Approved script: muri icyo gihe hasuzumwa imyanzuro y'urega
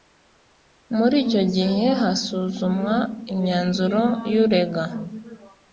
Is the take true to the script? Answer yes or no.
yes